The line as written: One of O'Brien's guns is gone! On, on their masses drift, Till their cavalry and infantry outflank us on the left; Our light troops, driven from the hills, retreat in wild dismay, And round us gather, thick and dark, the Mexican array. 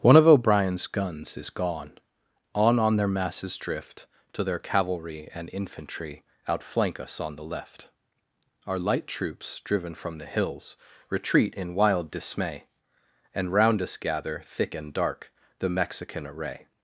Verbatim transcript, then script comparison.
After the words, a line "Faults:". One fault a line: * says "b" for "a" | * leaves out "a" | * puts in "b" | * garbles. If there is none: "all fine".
One of O'Brien's guns is gone! On, on their masses drift, Till their cavalry and infantry outflank us on the left; Our light troops, driven from the hills, retreat in wild dismay, And round us gather, thick and dark, the Mexican array.
Faults:
all fine